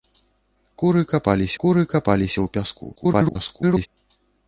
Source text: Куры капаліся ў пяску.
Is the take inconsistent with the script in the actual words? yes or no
yes